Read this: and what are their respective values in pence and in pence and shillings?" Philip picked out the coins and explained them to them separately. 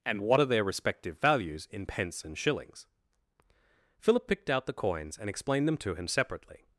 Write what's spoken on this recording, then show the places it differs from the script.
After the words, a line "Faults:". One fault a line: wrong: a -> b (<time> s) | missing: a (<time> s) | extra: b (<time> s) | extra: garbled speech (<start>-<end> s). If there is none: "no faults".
and what are their respective values in pence and shillings?" Philip picked out the coins and explained them to him separately.
Faults:
missing: in pence and (2.4 s)
wrong: them -> him (5.9 s)